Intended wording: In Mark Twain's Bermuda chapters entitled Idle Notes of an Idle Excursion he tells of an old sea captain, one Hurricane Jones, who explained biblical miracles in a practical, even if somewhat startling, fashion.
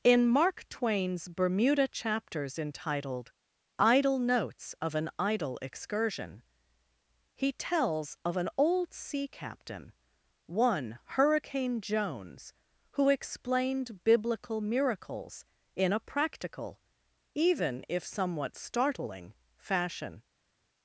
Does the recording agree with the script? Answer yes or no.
yes